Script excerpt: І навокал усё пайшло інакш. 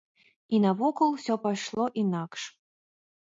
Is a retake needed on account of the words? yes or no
no